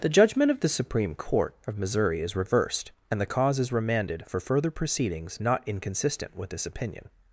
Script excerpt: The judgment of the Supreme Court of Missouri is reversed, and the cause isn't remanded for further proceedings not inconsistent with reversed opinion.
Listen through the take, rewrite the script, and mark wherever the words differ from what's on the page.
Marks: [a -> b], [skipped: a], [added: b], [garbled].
The judgment of the Supreme Court of Missouri is reversed, and the cause [isn't -> is] remanded for further proceedings not inconsistent with [reversed -> this] opinion.